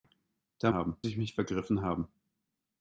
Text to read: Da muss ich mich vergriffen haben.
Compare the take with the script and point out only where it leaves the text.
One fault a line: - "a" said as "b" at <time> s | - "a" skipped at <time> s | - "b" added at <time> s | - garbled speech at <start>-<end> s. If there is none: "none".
- "muss" said as "haben" at 0.7 s